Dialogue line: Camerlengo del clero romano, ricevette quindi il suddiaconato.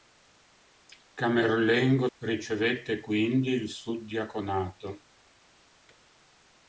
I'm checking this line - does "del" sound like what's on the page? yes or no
no